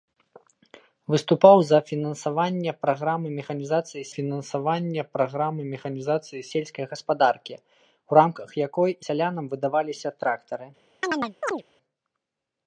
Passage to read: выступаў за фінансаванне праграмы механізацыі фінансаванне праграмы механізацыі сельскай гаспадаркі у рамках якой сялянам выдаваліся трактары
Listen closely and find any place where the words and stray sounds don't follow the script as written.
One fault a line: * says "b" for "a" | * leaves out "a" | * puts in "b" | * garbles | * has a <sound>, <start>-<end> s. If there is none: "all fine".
* has a chirp, 11.0-11.6 s